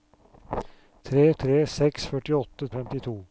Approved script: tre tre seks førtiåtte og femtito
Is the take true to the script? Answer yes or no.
yes